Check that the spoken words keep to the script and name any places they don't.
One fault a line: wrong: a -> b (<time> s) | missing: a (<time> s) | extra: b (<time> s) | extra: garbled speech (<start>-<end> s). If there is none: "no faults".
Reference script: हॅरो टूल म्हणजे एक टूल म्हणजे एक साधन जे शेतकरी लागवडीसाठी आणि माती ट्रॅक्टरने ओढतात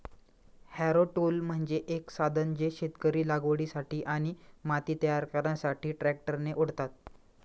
missing: टूल म्हणजे एक (2.1 s)
extra: तयार करण्यासाठी (5.0 s)